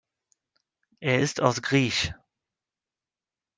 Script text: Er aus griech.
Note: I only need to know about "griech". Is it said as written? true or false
true